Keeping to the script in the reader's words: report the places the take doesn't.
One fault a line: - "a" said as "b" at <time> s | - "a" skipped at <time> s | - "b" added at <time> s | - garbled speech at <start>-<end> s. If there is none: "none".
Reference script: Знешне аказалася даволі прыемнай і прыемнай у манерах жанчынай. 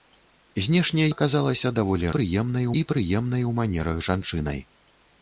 none